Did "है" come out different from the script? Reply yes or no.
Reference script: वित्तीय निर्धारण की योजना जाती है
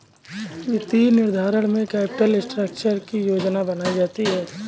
no